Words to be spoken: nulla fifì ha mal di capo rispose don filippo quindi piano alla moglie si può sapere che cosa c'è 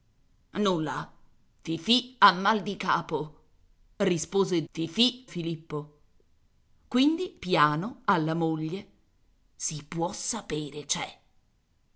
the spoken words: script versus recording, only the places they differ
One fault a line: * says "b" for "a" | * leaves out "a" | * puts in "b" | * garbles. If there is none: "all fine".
* says "fifì" for "don"
* leaves out "che cosa"